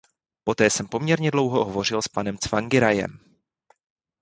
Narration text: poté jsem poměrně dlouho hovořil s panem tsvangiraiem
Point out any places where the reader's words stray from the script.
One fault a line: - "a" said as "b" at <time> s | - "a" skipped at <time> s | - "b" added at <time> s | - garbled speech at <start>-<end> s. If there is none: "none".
none